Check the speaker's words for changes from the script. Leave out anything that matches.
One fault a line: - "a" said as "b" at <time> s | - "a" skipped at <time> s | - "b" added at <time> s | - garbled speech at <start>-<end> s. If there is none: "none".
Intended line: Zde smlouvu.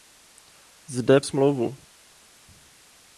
none